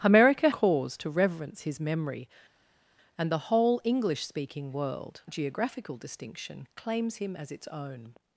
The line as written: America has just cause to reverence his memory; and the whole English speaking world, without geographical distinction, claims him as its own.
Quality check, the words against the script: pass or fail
fail